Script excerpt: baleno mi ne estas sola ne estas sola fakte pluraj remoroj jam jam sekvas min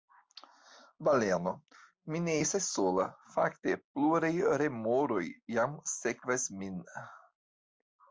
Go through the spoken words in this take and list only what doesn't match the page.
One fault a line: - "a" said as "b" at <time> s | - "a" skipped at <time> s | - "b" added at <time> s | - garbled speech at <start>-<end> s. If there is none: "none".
- "ne estas sola" skipped at 3.1 s
- "jam" skipped at 5.7 s